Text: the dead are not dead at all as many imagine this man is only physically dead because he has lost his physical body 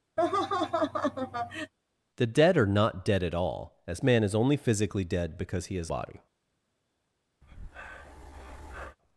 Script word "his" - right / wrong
wrong